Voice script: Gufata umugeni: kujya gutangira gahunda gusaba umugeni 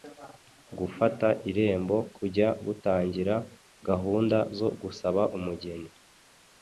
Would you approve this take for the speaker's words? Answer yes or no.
no